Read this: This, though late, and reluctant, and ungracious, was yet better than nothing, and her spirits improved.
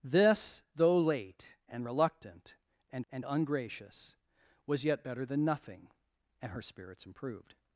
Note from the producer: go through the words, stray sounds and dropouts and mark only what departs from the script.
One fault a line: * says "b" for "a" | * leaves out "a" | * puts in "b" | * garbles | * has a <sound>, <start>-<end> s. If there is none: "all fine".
* puts in "and"